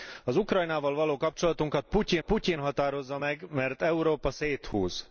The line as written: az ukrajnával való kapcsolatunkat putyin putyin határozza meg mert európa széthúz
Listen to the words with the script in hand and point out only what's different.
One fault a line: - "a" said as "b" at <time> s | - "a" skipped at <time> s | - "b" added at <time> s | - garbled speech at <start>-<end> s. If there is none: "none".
none